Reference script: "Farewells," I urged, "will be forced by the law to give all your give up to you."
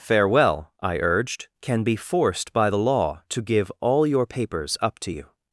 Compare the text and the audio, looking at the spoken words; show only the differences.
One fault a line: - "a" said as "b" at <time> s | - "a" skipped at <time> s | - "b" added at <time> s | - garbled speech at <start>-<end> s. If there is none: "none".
- "Farewells" said as "Farewell" at 0.0 s
- "will" said as "can" at 1.6 s
- "give" said as "papers" at 4.3 s